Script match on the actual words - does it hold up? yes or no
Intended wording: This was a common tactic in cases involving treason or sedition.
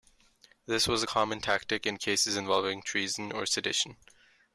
yes